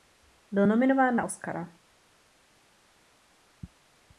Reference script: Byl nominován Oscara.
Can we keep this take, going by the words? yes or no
no